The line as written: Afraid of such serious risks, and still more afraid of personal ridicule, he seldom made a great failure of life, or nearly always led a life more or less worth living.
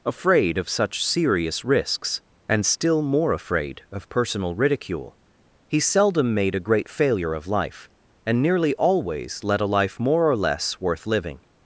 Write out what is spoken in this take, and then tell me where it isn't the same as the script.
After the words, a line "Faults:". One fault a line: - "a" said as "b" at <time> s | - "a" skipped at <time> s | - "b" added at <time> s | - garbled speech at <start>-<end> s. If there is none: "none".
Afraid of such serious risks, and still more afraid of personal ridicule, he seldom made a great failure of life, and nearly always led a life more or less worth living.
Faults:
- "or" said as "and" at 8.2 s